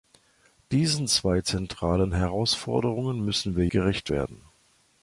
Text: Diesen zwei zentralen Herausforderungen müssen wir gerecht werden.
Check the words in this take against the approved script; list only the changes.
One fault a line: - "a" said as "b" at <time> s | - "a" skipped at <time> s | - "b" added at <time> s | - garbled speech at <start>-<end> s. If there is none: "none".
none